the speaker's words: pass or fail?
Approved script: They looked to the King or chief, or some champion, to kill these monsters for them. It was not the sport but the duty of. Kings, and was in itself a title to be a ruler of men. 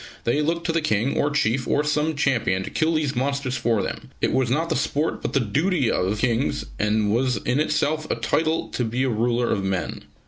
pass